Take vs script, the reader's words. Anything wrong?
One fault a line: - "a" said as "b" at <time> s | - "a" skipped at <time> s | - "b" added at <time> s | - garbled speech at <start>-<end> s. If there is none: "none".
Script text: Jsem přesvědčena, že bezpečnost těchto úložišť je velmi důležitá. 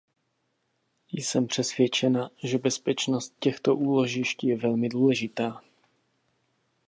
none